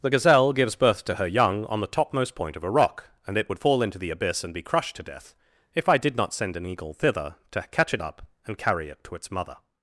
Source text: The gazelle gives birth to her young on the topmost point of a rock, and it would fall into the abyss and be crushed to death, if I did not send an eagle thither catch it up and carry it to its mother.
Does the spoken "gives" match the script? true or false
true